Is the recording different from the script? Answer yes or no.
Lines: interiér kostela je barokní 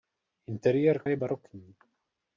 yes